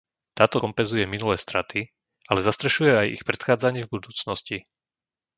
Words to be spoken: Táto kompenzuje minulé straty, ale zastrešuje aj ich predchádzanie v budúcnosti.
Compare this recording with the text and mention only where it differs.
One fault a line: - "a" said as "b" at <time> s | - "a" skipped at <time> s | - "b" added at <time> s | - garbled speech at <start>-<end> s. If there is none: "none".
none